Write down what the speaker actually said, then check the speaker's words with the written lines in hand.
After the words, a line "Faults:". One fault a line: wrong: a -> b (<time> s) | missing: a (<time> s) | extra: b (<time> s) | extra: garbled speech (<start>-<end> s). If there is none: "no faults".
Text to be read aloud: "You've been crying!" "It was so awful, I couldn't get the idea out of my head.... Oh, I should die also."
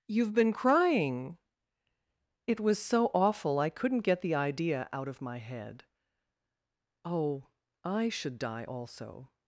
"You've been crying!" "It was so awful, I couldn't get the idea out of my head.... Oh, I should die also."
Faults:
no faults